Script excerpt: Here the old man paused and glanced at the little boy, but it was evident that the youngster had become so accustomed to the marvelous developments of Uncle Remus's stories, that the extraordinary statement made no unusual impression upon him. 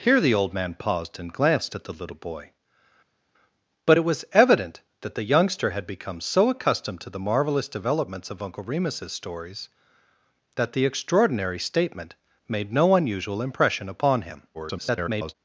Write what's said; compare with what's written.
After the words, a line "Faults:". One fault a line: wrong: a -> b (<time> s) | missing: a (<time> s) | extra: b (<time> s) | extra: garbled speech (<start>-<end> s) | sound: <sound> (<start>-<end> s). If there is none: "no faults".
Here the old man paused and glanced at the little boy, but it was evident that the youngster had become so accustomed to the marvelous developments of Uncle Remus's stories, that the extraordinary statement made no unusual impression upon him. [garbled]
Faults:
extra: garbled speech (14.5-15.3 s)